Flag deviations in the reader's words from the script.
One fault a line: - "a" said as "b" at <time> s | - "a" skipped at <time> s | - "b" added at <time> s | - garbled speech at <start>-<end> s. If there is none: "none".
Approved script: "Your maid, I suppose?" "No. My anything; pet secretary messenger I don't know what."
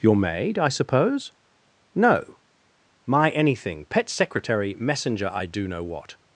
- "don't" said as "do" at 5.5 s